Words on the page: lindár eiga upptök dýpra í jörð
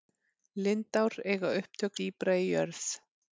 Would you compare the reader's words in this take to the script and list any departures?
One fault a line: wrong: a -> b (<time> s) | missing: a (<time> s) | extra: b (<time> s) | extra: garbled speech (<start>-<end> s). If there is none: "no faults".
no faults